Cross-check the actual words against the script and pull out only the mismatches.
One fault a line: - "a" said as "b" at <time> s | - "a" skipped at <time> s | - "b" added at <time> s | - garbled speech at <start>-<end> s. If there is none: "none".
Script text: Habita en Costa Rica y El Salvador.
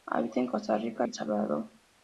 - "y" skipped at 1.1 s